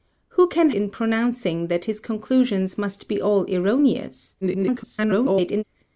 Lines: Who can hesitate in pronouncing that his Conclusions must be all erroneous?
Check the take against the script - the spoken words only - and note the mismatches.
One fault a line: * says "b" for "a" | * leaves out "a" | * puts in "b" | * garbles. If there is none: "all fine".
* leaves out "hesitate"
* garbles